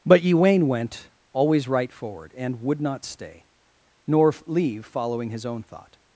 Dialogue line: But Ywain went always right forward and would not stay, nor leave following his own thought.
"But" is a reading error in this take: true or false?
false